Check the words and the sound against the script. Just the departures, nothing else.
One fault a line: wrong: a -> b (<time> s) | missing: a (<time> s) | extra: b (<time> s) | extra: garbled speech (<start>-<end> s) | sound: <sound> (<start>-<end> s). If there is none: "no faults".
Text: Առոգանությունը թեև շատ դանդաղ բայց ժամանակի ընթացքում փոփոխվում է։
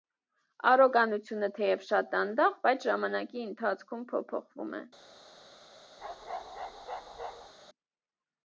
sound: bark (6.0-7.5 s)